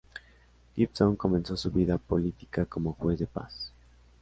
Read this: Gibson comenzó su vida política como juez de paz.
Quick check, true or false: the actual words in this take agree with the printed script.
true